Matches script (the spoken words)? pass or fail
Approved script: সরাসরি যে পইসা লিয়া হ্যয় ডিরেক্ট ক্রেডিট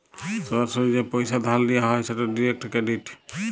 fail